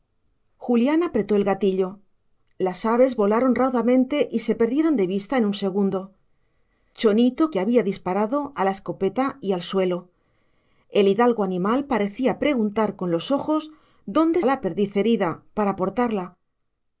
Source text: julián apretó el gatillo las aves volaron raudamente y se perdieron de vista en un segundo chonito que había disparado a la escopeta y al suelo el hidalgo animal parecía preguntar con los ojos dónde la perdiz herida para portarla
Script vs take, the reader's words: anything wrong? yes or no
no